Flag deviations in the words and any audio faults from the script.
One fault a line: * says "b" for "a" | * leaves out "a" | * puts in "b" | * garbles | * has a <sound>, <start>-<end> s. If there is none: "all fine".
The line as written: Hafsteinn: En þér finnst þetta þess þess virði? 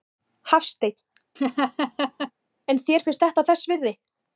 * has a laugh, 1.4-2.3 s
* leaves out "þess"